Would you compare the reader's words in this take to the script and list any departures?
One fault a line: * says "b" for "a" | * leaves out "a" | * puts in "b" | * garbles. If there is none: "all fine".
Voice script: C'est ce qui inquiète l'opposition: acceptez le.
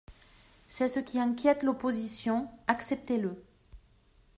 all fine